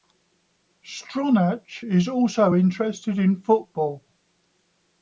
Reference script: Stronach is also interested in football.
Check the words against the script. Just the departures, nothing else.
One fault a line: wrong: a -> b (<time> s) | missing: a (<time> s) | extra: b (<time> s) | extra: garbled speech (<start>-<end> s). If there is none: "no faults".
no faults